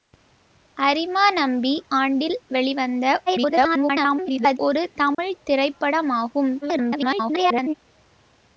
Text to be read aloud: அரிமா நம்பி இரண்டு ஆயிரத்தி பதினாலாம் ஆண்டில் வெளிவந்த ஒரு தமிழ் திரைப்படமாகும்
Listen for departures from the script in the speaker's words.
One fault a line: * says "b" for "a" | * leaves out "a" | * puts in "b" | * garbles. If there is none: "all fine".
* leaves out "இரண்டு ஆயிரத்தி பதினாலாம்"
* garbles
* garbles